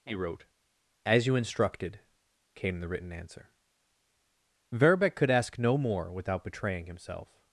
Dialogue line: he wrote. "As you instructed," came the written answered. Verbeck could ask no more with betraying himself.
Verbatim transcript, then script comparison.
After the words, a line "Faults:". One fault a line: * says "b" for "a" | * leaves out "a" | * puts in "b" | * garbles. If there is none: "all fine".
he wrote. "As you instructed," came the written answer. Verbeck could ask no more without betraying himself.
Faults:
* says "answer" for "answered"
* says "without" for "with"